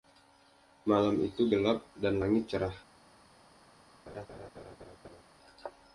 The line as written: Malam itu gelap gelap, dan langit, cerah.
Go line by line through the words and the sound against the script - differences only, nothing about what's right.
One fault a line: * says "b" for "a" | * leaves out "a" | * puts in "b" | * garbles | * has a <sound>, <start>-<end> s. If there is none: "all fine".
* leaves out "gelap"
* has a laugh, 4.1-5.2 s